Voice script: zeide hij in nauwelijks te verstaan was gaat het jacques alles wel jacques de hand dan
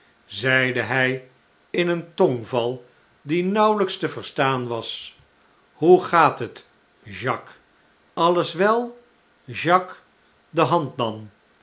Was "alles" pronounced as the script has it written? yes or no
yes